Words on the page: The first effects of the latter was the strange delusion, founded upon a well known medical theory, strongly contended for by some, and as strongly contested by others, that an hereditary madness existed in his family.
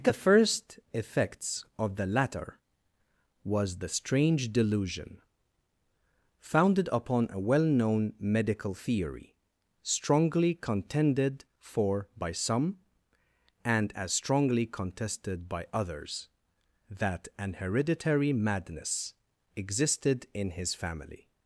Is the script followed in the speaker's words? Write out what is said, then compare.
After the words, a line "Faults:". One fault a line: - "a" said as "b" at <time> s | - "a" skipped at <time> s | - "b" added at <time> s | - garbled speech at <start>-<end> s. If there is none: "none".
The first effects of the latter was the strange delusion, founded upon a well known medical theory, strongly contended for by some, and as strongly contested by others, that an hereditary madness existed in his family.
Faults:
none